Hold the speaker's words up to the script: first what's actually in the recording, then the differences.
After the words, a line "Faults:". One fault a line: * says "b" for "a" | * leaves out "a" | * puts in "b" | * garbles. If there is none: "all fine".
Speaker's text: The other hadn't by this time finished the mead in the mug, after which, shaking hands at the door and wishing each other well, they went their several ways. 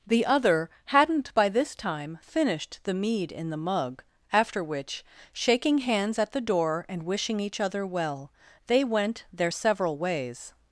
The other hadn't by this time finished the mead in the mug, after which, shaking hands at the door and wishing each other well, they went their several ways.
Faults:
all fine